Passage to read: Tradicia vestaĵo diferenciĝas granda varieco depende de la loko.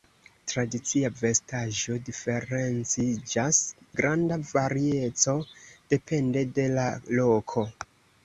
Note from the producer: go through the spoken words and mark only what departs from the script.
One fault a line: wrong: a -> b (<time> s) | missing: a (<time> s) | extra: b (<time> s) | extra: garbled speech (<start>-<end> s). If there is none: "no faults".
no faults